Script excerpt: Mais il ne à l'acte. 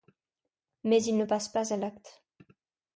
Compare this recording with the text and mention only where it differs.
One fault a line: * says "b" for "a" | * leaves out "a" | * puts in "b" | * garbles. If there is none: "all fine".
* puts in "passe pas"